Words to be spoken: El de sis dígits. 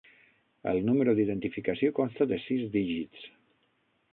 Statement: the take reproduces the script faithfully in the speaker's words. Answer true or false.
false